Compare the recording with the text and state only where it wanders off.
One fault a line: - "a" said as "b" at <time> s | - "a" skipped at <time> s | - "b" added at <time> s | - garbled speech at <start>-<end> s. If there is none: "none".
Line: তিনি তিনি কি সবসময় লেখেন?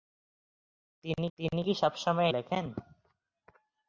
none